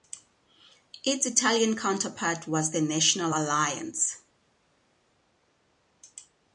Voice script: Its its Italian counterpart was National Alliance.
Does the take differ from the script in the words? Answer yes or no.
yes